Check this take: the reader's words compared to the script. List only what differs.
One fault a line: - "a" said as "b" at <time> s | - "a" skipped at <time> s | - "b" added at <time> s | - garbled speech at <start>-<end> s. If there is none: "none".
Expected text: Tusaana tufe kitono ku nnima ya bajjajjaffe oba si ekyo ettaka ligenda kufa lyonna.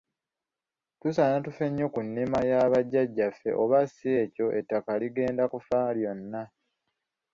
- "kitono" said as "nnyo" at 1.7 s